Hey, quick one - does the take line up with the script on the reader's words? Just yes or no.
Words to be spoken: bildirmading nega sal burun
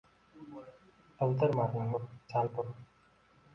no